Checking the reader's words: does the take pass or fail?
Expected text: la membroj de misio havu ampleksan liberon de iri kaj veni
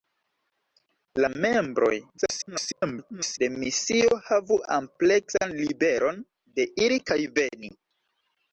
fail